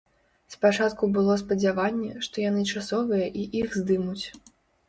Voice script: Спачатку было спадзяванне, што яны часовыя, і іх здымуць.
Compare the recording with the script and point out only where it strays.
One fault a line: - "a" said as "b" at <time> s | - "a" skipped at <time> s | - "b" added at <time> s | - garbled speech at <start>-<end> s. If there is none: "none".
none